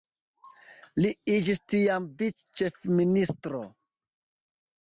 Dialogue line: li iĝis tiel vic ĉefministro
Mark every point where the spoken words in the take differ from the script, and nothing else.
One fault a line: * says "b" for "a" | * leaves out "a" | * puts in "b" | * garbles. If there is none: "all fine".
* says "tiam" for "tiel"